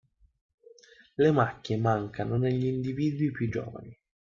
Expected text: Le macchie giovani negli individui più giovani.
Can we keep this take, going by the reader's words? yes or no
no